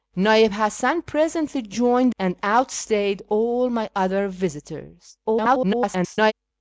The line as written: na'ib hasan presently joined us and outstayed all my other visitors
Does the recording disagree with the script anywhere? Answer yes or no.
yes